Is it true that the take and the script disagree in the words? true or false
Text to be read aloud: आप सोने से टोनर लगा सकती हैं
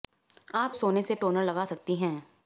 false